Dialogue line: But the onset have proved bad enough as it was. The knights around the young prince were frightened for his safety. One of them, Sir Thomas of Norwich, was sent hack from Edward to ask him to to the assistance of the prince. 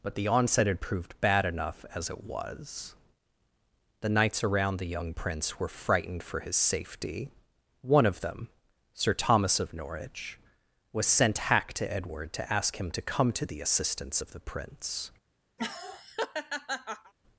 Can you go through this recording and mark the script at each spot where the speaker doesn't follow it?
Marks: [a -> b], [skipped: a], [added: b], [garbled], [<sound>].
But the onset [have -> had] proved bad enough as it was. The knights around the young prince were frightened for his safety. One of them, Sir Thomas of Norwich, was sent hack [from -> to] Edward to ask him to [added: come] to the assistance of the prince. [laugh]